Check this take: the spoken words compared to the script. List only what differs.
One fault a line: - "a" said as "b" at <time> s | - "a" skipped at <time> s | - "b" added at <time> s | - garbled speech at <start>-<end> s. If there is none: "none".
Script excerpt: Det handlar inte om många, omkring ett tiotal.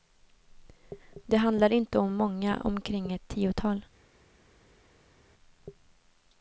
none